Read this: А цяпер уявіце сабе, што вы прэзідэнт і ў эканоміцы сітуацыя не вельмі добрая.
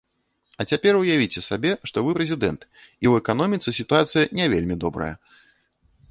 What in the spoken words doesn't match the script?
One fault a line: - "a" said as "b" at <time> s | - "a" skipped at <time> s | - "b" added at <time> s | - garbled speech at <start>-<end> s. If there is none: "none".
none